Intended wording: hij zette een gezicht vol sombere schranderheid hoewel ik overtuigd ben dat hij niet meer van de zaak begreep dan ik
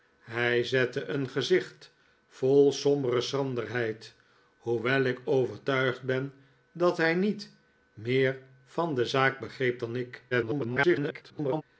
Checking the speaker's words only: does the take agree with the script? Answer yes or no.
no